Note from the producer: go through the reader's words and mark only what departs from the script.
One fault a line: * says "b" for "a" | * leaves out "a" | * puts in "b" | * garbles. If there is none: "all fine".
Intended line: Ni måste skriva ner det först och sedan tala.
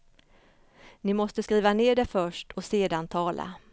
all fine